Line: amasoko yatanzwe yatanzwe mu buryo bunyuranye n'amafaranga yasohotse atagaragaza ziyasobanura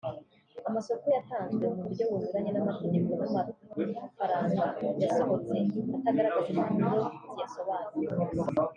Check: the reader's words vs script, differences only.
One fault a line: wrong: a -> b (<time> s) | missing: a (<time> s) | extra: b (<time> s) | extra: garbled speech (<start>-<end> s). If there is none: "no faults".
missing: yatanzwe (1.7 s)
extra: n'amategeko (2.5 s)
extra: impapuro (6.5 s)